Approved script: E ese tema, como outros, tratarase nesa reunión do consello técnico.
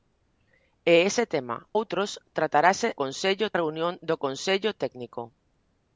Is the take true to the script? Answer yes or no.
no